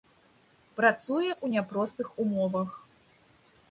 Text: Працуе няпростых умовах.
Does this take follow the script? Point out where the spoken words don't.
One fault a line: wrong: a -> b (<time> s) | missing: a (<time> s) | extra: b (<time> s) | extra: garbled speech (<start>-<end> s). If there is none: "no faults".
extra: ў (1.3 s)